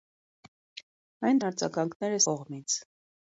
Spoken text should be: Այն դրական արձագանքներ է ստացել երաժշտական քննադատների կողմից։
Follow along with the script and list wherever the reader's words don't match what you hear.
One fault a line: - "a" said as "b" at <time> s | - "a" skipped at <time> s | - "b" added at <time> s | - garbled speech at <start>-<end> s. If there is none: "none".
- "դրական" skipped at 1.4 s
- "ստացել երաժշտական քննադատների" skipped at 2.2 s